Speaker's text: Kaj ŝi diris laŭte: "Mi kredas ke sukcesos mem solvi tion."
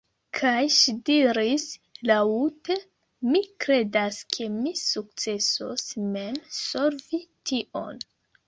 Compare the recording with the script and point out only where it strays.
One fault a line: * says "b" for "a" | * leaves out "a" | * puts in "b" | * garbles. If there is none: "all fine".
* puts in "mi"